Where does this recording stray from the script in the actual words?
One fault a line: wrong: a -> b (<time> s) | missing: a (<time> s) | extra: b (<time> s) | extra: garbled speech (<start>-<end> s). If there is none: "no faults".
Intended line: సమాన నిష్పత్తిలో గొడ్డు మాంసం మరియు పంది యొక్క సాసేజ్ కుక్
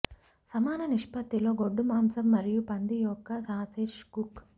no faults